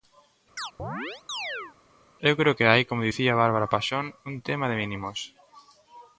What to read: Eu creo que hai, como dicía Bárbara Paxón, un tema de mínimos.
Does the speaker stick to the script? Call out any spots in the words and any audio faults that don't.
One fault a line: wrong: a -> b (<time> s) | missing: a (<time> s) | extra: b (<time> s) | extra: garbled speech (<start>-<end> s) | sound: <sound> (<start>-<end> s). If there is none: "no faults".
sound: chirp (0.6-1.8 s)